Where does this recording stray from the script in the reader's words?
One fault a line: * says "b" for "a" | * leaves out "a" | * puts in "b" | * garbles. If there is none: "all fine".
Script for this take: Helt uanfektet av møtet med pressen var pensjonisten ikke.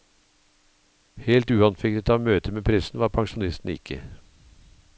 all fine